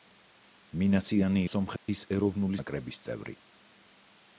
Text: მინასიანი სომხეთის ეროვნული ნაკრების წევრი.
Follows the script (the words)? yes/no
yes